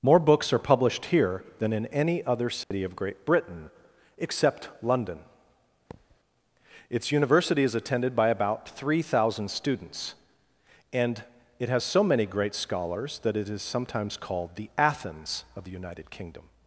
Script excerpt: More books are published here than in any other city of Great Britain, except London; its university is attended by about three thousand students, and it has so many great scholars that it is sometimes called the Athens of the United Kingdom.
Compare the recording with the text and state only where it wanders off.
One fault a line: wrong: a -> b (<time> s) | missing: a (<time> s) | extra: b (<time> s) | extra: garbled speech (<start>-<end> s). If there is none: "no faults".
no faults